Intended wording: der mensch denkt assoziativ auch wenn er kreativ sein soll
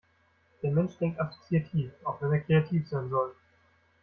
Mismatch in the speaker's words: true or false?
false